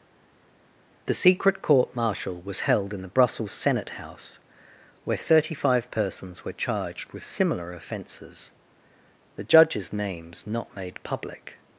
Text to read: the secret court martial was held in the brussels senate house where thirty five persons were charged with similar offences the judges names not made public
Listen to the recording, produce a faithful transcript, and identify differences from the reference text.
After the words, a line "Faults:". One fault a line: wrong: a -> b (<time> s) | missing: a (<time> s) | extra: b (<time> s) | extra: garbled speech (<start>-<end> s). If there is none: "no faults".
the secret court martial was held in the brussels senate house where thirty five persons were charged with similar offences the judges names not made public
Faults:
no faults